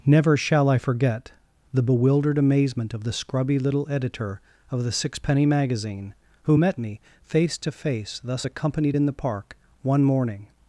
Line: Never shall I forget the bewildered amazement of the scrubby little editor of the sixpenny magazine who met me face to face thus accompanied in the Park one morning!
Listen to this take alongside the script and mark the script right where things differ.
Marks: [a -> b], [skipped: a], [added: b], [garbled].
Never shall I forget the bewildered amazement of the scrubby little editor of the sixpenny magazine who met me face to face thus accompanied in the Park one morning!